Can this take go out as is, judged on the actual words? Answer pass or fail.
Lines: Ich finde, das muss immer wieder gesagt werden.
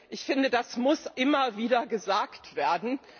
pass